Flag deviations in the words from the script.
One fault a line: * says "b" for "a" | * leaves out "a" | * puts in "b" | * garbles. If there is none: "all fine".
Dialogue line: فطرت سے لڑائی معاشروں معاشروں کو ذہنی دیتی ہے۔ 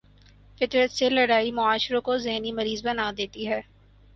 * leaves out "معاشروں"
* puts in "مریض بنا"